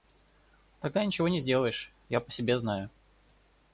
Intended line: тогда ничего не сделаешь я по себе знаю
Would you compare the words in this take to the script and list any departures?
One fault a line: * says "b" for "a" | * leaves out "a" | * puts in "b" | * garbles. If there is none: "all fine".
all fine